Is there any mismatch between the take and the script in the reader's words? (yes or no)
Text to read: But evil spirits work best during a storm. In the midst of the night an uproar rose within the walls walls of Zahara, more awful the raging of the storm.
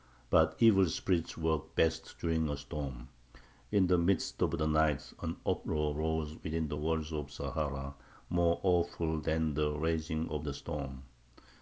yes